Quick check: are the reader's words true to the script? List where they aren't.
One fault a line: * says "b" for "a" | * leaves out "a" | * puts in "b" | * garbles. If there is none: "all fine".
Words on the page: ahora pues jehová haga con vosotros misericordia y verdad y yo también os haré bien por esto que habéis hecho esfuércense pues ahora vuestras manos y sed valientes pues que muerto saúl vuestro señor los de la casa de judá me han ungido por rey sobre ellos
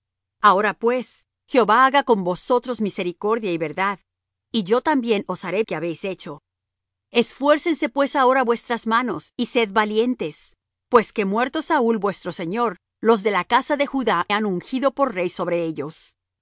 * leaves out "bien por esto"
* leaves out "me"